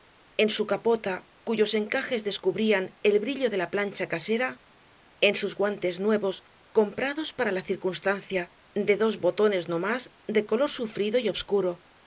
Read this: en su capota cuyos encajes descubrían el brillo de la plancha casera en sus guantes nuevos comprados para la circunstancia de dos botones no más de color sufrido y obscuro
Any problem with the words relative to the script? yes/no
no